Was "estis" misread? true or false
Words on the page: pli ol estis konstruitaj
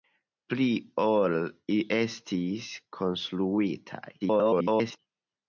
false